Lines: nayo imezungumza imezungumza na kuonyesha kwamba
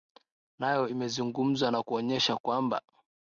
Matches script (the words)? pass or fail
fail